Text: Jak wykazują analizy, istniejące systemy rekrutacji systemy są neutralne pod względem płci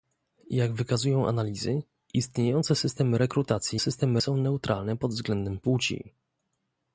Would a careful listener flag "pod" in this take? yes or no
no